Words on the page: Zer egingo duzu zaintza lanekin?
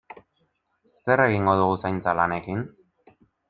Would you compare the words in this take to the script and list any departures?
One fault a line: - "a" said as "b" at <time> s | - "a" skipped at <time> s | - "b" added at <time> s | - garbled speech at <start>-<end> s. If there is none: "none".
- "duzu" said as "dugu" at 1.6 s